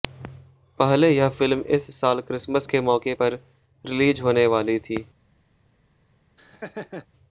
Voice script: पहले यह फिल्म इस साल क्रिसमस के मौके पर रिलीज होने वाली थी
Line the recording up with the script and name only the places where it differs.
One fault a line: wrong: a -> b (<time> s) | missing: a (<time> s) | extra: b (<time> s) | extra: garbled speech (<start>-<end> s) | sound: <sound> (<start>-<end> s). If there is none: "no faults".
sound: laugh (6.4-7.1 s)